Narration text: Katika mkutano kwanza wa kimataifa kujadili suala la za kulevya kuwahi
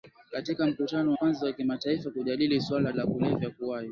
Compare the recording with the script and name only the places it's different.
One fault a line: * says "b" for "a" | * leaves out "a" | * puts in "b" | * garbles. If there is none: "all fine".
all fine